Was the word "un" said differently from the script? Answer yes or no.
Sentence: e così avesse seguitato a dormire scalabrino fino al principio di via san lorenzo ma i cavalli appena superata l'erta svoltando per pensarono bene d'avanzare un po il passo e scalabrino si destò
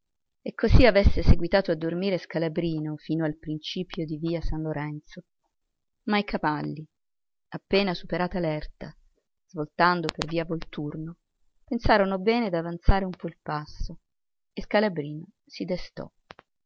no